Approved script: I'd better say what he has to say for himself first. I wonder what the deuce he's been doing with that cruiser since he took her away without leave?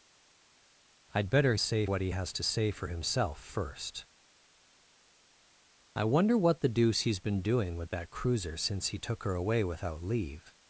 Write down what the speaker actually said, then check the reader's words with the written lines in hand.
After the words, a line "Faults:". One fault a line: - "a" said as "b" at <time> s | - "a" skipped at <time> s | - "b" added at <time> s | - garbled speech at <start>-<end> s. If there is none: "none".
I'd better say what he has to say for himself first. I wonder what the deuce he's been doing with that cruiser since he took her away without leave?
Faults:
none